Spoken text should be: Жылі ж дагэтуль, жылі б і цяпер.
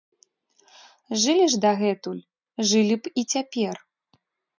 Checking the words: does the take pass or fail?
pass